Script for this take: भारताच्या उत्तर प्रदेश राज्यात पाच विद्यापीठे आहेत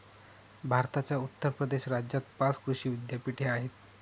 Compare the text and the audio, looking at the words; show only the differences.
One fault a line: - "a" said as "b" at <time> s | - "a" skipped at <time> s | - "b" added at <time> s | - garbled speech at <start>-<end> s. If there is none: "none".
- "कृषी" added at 2.6 s